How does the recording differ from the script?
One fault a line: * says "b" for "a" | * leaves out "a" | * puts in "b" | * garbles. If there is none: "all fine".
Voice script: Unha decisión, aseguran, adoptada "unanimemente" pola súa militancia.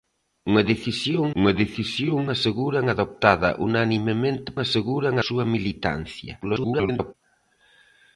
* puts in "unha decisión"
* says "aseguran" for "pola"
* garbles